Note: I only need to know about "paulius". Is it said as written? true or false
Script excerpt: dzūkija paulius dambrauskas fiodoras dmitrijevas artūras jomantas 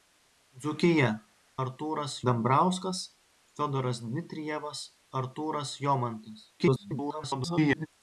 false